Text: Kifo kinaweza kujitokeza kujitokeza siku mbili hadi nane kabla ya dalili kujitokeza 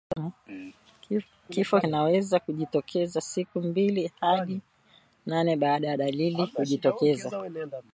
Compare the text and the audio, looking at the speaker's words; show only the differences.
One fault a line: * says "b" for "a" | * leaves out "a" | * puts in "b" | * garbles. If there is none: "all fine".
* leaves out "kujitokeza"
* says "baada" for "kabla"